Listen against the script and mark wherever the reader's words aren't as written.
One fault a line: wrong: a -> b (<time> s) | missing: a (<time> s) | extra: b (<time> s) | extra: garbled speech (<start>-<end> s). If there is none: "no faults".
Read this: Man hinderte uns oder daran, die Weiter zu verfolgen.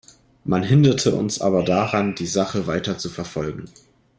wrong: oder -> aber (1.4 s)
extra: Sache (2.2 s)